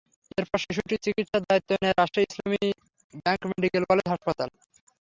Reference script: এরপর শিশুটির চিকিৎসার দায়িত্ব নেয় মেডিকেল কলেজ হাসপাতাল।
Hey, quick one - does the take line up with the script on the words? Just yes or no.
no